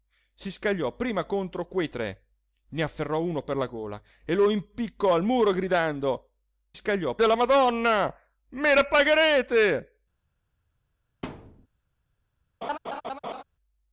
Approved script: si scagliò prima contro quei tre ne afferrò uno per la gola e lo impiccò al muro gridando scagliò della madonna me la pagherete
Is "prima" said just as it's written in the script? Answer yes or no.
yes